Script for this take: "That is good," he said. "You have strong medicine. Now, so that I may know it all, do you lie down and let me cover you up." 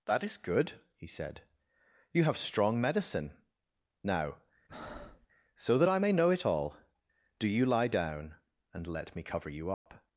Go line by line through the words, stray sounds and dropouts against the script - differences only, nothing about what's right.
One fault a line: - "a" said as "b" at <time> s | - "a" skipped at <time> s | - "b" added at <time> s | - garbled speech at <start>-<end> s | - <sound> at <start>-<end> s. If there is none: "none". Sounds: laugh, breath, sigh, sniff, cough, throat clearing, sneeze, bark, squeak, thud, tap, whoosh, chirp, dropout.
- breath at 4.7-5.3 s
- dropout at 9.7-9.9 s